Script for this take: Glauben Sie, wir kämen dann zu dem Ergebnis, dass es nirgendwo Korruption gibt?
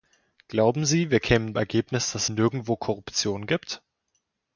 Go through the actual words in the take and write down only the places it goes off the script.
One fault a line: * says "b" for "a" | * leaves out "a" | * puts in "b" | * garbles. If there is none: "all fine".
* leaves out "dann zu dem"
* leaves out "es"